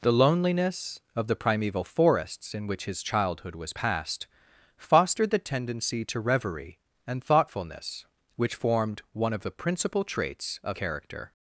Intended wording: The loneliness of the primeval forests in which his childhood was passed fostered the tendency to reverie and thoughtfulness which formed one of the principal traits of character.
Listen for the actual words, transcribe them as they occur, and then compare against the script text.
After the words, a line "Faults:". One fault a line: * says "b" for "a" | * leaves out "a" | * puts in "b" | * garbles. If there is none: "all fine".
The loneliness of the primeval forests in which his childhood was passed fostered the tendency to reverie and thoughtfulness which formed one of the principal traits of character.
Faults:
all fine